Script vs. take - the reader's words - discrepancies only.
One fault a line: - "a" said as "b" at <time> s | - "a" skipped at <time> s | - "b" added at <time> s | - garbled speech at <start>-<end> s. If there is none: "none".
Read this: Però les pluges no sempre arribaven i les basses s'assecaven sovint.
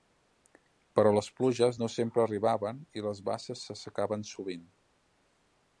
none